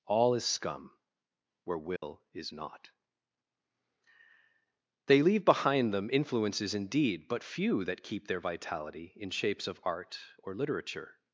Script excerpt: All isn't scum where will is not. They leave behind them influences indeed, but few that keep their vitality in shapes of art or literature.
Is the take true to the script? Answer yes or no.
no